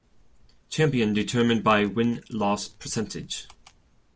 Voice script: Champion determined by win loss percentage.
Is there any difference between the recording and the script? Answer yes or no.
no